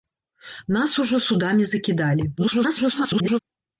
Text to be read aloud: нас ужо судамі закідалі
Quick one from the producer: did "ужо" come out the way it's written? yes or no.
yes